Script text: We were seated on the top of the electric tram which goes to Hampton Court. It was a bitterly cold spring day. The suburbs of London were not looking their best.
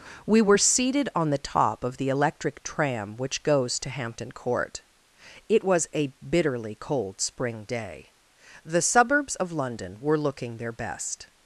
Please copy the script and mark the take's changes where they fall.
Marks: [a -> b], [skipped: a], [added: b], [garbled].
We were seated on the top of the electric tram which goes to Hampton Court. It was a bitterly cold spring day. The suburbs of London were [skipped: not] looking their best.